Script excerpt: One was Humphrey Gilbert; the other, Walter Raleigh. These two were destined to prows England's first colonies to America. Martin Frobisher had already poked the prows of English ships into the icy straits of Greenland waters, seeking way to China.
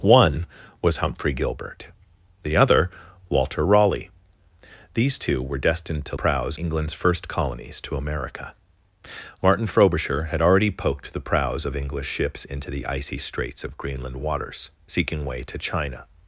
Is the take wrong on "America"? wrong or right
right